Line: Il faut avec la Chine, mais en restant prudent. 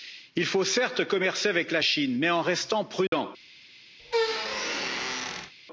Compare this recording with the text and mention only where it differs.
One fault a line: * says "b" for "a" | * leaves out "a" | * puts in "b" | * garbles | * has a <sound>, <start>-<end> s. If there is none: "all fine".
* puts in "certes commercer"
* has a dropout, 3.1-3.1 s
* has a squeak, 4.0-5.5 s